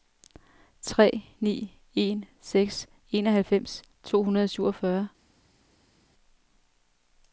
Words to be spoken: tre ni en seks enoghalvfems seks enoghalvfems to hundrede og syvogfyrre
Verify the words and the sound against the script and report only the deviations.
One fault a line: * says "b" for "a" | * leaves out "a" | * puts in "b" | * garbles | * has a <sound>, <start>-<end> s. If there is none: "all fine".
* leaves out "seks enoghalvfems"